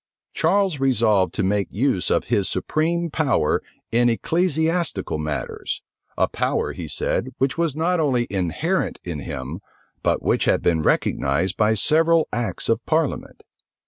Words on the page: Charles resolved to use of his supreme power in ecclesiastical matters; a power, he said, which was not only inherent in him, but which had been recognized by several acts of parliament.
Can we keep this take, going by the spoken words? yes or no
no